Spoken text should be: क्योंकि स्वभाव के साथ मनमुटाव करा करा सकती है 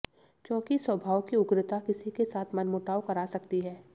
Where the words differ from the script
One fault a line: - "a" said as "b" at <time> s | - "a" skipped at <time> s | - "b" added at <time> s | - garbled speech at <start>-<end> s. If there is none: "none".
- "की उग्रता किसी" added at 1.2 s
- "करा" skipped at 3.2 s